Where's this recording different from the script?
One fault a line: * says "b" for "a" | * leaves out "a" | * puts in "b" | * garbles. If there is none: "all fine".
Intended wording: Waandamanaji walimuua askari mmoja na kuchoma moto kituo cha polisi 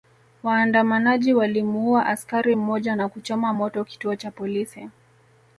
all fine